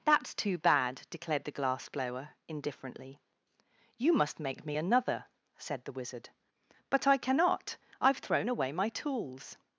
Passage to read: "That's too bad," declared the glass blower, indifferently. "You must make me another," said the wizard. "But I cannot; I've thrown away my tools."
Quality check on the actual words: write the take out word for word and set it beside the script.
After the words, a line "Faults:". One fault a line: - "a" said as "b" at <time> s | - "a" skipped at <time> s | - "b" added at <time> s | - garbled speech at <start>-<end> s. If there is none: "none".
"That's too bad," declared the glass blower, indifferently. "You must make me another," said the wizard. "But I cannot; I've thrown away my tools."
Faults:
none